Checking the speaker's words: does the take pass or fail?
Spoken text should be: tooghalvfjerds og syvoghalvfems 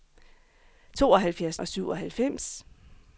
pass